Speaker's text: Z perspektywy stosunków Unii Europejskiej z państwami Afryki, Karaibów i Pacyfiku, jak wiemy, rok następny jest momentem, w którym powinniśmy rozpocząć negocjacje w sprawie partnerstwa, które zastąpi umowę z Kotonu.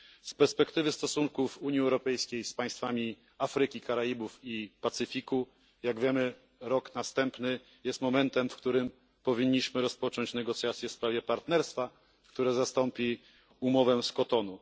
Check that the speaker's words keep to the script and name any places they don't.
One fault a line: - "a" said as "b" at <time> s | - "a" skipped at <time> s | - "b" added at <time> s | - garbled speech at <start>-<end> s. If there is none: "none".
none